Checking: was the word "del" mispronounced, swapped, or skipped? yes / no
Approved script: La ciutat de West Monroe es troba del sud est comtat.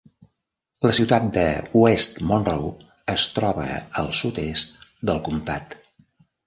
yes